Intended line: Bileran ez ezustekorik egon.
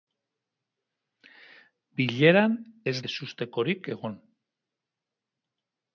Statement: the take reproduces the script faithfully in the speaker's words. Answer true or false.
true